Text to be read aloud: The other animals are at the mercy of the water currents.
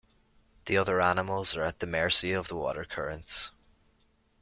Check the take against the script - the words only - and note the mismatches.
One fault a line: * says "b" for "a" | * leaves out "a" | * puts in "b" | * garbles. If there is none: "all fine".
all fine